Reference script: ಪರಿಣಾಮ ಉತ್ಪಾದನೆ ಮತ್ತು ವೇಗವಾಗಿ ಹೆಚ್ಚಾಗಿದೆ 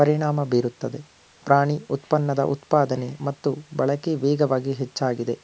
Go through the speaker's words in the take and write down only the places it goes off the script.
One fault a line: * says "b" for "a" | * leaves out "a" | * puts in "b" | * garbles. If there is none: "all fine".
* puts in "ಬೀರುತ್ತದೆ ಪ್ರಾಣಿ ಉತ್ಪನ್ನದ"
* puts in "ಬಳಕೆ"